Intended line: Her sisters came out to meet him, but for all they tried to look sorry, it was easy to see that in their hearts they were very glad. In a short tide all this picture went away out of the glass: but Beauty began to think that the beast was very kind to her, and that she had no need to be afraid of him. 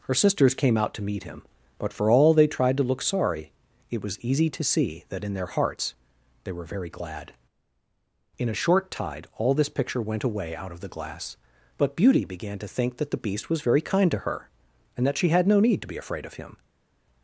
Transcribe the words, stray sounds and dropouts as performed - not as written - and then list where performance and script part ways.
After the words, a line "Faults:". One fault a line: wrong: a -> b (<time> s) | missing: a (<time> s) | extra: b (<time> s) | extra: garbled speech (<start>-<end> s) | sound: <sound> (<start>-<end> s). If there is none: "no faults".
Her sisters came out to meet him, but for all they tried to look sorry, it was easy to see that in their hearts they were very glad. In a short tide all this picture went away out of the glass: but Beauty began to think that the beast was very kind to her, and that she had no need to be afraid of him.
Faults:
no faults